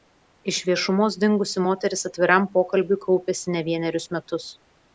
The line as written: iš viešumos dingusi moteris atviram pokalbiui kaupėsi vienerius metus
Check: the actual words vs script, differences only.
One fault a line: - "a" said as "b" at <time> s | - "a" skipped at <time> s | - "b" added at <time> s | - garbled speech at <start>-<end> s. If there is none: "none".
- "ne" added at 3.6 s